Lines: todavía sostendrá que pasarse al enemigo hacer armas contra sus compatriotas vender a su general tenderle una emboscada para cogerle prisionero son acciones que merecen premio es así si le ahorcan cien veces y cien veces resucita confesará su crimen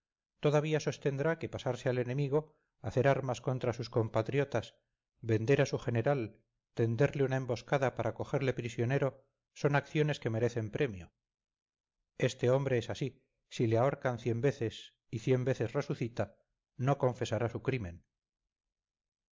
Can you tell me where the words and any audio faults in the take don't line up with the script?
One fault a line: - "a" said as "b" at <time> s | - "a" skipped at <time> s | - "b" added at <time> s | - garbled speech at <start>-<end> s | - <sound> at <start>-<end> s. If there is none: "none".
- "este hombre" added at 12.2 s
- "no" added at 16.8 s